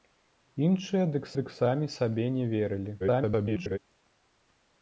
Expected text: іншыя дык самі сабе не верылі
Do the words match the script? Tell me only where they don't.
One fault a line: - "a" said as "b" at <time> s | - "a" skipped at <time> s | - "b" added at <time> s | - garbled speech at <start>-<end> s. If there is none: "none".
- "дык" added at 1.4 s
- garbled speech at 3.0-3.8 s